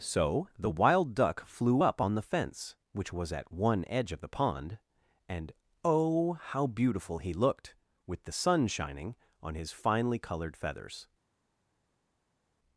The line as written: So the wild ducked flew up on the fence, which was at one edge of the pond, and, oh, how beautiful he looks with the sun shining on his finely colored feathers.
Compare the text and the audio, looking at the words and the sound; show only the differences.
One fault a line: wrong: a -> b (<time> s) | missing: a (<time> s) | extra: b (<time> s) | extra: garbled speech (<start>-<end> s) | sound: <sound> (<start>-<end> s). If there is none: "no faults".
wrong: ducked -> duck (1.1 s)
wrong: looks -> looked (7.3 s)